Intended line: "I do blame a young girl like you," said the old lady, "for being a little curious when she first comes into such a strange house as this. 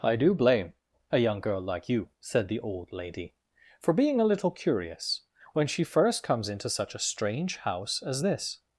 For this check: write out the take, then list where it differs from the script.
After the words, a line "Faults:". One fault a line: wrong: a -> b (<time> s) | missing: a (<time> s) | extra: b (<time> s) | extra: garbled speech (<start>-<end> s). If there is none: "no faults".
"I do blame a young girl like you," said the old lady, "for being a little curious when she first comes into such a strange house as this.
Faults:
no faults